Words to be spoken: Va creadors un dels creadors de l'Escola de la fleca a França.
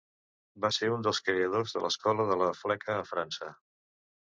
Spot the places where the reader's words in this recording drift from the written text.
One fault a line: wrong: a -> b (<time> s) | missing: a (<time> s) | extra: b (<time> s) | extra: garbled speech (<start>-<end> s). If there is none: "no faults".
wrong: creadors -> ser (0.7 s)